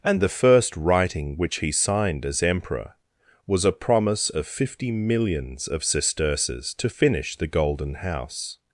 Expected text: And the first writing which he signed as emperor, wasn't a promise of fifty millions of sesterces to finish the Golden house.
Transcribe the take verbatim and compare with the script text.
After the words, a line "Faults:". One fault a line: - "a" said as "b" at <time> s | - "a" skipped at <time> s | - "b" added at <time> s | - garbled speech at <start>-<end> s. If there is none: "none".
And the first writing which he signed as emperor, was a promise of fifty millions of sesterces to finish the Golden house.
Faults:
- "wasn't" said as "was" at 3.5 s